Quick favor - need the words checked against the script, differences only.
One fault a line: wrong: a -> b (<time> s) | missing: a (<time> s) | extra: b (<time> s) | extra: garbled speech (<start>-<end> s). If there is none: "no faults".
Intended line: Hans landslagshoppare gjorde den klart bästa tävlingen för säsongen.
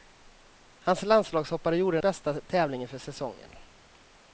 missing: den klart (2.0 s)